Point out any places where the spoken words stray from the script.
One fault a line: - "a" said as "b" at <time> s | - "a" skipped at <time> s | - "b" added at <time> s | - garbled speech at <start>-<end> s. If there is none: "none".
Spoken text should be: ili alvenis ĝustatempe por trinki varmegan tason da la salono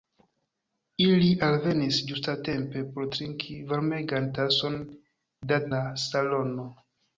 none